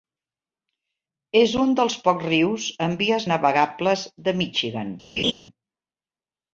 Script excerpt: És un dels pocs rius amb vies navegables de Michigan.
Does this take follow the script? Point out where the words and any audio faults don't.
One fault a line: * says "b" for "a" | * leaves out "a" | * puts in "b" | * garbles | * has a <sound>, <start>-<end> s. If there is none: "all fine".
* has a laugh, 5.2-5.3 s